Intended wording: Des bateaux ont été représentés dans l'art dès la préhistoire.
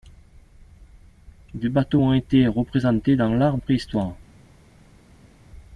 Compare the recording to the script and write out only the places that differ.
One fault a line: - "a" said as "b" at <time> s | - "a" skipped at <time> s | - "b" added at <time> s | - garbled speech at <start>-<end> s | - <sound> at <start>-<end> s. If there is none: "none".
- "dès la" skipped at 3.6 s